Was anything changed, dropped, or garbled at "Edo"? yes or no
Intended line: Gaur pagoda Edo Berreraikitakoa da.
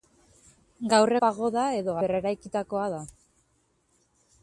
no